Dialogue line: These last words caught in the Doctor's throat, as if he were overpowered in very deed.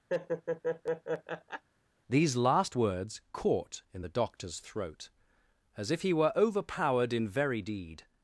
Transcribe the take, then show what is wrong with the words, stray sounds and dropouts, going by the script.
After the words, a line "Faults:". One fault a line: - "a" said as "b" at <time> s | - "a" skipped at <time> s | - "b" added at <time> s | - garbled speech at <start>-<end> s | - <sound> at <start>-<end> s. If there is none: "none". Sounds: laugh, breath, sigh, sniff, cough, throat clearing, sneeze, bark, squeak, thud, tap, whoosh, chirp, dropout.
These last words caught in the Doctor's throat, as if he were overpowered in very deed.
Faults:
- laugh at 0.1-1.6 s